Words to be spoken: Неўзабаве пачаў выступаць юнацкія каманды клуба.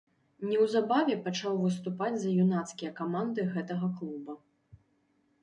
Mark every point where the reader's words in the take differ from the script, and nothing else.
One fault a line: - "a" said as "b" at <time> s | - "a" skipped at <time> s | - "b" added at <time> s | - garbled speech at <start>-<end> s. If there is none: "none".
- "за" added at 2.2 s
- "гэтага" added at 3.5 s